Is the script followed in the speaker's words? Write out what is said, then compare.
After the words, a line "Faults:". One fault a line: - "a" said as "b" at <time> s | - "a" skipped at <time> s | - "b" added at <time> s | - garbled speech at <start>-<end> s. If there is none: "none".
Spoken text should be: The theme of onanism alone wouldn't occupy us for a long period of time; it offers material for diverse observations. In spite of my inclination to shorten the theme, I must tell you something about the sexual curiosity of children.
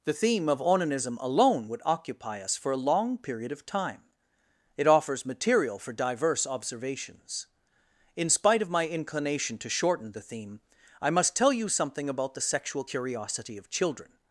The theme of onanism alone would occupy us for a long period of time; it offers material for diverse observations. In spite of my inclination to shorten the theme, I must tell you something about the sexual curiosity of children.
Faults:
- "wouldn't" said as "would" at 1.7 s